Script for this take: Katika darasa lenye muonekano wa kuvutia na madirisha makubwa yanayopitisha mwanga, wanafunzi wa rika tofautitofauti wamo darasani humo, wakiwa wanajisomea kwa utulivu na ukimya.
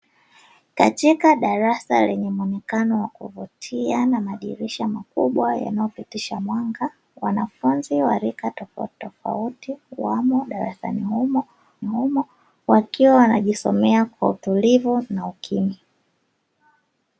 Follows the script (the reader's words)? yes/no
no